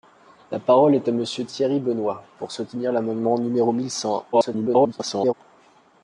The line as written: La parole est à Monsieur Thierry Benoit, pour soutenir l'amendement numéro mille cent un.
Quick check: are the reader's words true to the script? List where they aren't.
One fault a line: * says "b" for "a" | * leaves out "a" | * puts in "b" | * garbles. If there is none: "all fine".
* garbles